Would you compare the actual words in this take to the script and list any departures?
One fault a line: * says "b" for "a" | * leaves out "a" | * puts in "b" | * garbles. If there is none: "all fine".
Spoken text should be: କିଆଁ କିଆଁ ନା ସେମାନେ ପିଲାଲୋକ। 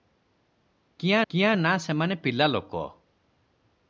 all fine